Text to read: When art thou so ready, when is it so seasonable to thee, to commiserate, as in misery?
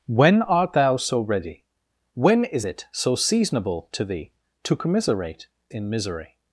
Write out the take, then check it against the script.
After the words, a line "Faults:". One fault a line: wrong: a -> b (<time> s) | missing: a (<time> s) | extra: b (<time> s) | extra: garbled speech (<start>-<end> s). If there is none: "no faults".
When art thou so ready, when is it so seasonable to thee, to commiserate, in misery?
Faults:
missing: as (5.5 s)